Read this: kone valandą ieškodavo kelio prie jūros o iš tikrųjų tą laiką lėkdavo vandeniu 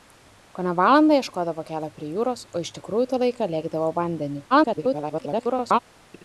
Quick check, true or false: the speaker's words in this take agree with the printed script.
false